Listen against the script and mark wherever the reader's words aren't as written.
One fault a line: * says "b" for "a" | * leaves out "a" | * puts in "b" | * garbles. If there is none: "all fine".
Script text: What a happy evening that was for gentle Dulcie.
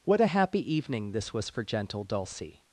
* says "this" for "that"